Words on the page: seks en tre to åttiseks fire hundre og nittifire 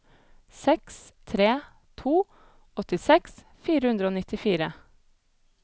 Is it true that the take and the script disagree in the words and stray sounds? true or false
true